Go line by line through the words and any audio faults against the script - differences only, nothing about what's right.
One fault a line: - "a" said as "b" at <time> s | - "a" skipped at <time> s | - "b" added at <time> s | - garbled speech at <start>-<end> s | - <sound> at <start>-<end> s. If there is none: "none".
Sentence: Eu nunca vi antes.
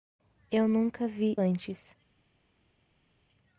none